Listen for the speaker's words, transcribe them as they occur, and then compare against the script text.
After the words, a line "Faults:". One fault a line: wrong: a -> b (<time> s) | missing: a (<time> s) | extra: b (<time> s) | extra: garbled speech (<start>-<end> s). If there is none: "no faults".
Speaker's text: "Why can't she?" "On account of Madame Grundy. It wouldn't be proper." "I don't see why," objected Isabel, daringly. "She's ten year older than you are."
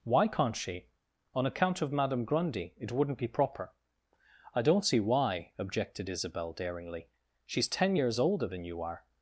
"Why can't she?" "On account of Madame Grundy. It wouldn't be proper." "I don't see why," objected Isabel, daringly. "She's ten years older than you are."
Faults:
wrong: year -> years (7.9 s)